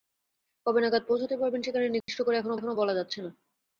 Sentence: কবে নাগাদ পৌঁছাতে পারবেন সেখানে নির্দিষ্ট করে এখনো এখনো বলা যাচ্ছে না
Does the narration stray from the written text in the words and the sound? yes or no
yes